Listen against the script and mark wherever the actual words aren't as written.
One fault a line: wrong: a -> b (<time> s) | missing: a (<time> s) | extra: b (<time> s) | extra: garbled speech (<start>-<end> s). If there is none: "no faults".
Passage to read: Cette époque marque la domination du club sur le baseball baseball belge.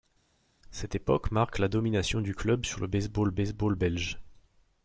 no faults